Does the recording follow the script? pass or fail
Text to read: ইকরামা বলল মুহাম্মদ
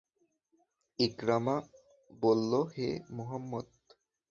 fail